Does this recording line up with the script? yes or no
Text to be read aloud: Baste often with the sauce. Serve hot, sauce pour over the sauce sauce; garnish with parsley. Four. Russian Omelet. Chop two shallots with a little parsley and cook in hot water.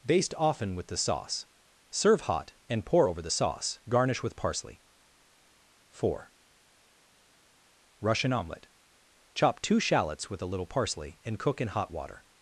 no